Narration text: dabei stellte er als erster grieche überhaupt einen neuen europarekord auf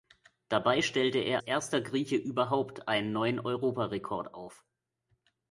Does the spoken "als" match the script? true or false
false